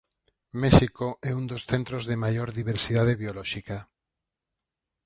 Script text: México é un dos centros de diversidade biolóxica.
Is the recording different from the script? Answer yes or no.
yes